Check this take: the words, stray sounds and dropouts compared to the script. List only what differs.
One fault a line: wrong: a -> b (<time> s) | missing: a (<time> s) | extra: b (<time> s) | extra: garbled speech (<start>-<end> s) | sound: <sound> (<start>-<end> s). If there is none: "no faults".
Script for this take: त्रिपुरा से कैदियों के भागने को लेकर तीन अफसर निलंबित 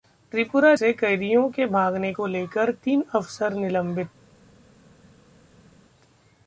no faults